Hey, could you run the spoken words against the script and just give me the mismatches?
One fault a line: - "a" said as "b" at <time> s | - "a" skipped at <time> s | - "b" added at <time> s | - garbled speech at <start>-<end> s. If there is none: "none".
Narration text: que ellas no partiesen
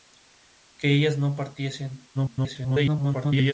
- garbled speech at 2.1-3.5 s